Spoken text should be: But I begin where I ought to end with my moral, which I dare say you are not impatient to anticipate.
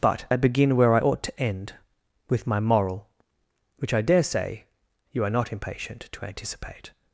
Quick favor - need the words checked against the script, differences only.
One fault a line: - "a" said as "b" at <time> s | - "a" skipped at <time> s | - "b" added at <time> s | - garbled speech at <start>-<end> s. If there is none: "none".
none